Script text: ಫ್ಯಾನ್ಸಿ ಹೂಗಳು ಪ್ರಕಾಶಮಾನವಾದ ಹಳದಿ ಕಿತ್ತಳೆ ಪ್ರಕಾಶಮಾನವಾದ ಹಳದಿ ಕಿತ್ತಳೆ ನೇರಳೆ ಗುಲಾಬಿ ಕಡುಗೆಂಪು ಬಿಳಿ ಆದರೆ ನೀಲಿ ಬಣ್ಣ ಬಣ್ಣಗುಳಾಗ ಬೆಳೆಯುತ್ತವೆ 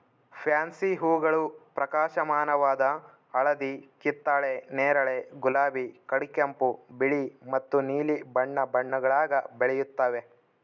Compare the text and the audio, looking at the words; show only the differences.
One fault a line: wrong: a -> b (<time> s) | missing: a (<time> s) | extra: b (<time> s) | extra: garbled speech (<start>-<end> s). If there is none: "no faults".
missing: ಪ್ರಕಾಶಮಾನವಾದ ಹಳದಿ ಕಿತ್ತಳೆ (4.5 s)
wrong: ಆದರೆ -> ಮತ್ತು (7.5 s)